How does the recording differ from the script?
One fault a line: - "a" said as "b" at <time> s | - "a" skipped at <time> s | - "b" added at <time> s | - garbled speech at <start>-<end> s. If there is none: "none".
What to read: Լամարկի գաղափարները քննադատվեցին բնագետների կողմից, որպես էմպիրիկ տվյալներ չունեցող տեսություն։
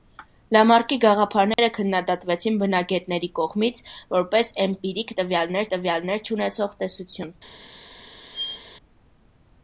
- "տվյալներ" added at 5.7 s